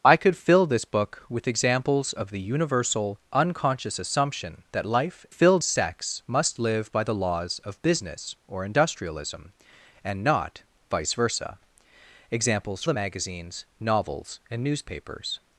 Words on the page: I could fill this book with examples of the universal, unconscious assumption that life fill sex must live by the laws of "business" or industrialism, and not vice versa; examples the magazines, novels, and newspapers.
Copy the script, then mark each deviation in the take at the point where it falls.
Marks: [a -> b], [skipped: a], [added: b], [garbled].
I could fill this book with examples of the universal, unconscious assumption that life fill sex must live by the laws of "business" or industrialism, and not vice versa; examples the magazines, novels, and newspapers.